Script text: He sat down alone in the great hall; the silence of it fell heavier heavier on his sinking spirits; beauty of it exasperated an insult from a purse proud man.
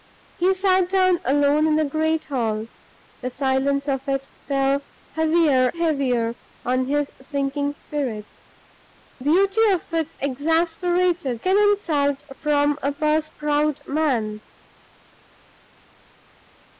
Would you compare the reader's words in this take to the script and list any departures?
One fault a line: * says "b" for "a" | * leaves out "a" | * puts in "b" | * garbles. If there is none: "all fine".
all fine